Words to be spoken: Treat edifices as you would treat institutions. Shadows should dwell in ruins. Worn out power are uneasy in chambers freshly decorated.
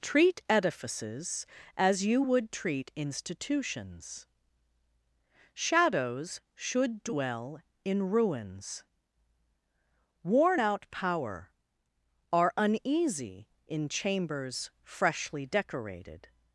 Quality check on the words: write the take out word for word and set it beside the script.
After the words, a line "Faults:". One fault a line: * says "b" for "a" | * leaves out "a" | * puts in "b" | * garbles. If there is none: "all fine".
Treat edifices as you would treat institutions. Shadows should dwell in ruins. Worn out power are uneasy in chambers freshly decorated.
Faults:
all fine